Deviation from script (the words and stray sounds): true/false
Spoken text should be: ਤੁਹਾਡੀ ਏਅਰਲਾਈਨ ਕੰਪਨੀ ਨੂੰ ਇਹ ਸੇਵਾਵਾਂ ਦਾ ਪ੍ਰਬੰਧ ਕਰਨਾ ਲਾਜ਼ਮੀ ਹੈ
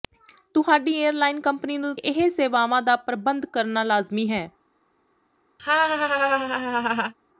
true